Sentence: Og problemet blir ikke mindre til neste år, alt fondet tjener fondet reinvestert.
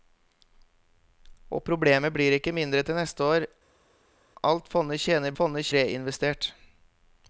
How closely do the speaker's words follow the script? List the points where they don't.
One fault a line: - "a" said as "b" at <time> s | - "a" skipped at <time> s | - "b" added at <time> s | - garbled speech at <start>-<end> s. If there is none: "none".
none